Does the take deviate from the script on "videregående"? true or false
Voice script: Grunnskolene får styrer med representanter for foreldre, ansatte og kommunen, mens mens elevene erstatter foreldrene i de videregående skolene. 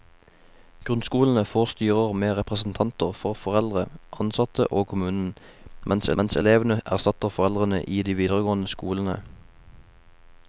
false